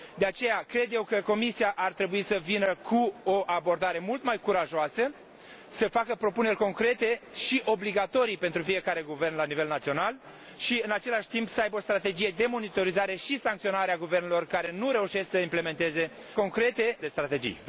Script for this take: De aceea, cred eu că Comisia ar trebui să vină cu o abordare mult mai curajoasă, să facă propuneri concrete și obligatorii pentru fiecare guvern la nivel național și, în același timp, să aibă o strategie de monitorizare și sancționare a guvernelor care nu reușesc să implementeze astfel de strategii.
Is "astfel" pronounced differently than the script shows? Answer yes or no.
yes